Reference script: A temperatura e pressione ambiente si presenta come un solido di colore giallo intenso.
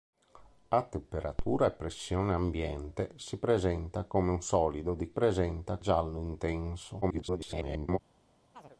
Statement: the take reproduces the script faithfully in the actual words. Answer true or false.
false